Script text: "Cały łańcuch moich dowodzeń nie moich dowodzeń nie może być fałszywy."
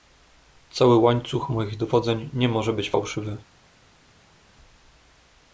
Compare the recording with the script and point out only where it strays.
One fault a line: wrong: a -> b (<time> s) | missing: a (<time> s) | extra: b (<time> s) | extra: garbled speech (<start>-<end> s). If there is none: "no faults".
missing: moich dowodzeń nie (2.5 s)